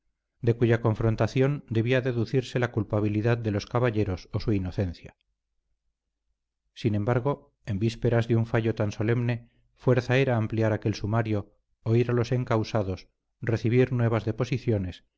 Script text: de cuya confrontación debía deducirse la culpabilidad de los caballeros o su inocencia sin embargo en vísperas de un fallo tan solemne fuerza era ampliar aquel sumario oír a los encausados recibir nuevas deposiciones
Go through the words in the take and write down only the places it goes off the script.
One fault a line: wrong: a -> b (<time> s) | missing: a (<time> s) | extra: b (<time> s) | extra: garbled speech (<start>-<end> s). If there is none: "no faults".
no faults